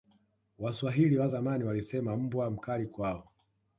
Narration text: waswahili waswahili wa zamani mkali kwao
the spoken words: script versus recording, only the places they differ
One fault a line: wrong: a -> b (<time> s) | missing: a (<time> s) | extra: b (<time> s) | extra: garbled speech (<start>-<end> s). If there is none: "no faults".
missing: waswahili (1.2 s)
extra: walisema mbwa (1.6 s)